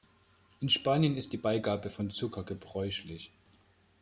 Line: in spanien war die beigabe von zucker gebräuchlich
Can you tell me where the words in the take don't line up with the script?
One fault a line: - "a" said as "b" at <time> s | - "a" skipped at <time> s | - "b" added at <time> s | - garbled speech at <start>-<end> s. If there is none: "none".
- "war" said as "ist" at 1.1 s